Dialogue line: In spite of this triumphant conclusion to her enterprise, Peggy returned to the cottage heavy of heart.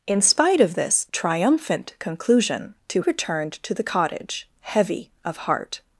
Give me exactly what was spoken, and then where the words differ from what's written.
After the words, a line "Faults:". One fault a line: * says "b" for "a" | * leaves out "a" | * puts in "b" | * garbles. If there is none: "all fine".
In spite of this triumphant conclusion to returned to the cottage heavy of heart.
Faults:
* leaves out "her enterprise Peggy"